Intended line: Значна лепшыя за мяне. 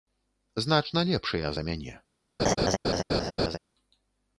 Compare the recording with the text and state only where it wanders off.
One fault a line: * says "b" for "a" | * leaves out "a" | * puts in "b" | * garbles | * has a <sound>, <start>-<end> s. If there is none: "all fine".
* has a laugh, 2.4-3.6 s